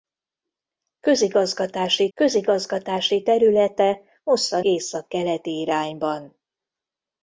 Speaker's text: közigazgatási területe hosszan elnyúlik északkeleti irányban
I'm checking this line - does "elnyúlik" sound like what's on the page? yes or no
no